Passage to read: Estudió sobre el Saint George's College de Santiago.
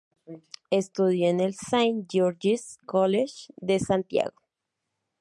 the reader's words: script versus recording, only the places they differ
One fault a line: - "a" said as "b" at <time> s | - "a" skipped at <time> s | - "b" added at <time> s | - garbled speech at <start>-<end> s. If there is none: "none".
- "sobre" said as "en" at 1.3 s